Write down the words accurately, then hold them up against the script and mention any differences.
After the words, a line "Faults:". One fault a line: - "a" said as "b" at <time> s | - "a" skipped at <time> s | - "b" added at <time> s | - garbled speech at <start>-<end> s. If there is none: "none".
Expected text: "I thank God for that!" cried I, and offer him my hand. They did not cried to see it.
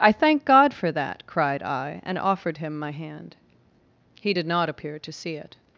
"I thank God for that!" cried I, and offered him my hand. He did not appear to see it.
Faults:
- "offer" said as "offered" at 2.2 s
- "They" said as "He" at 4.2 s
- "cried" said as "appear" at 4.7 s